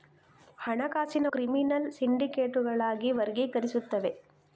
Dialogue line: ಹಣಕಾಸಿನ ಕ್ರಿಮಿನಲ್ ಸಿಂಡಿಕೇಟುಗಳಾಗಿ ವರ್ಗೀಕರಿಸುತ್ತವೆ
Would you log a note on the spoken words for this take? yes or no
no